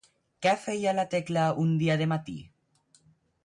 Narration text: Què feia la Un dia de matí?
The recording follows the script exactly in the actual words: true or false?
false